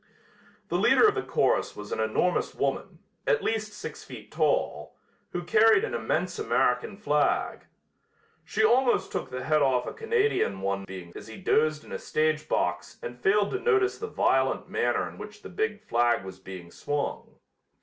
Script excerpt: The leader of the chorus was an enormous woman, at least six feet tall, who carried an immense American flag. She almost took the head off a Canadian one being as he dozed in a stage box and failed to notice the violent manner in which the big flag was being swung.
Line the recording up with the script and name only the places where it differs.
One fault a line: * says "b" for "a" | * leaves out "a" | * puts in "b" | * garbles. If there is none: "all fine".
all fine